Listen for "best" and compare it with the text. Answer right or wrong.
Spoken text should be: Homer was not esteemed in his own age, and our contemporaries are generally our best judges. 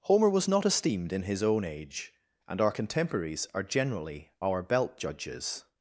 wrong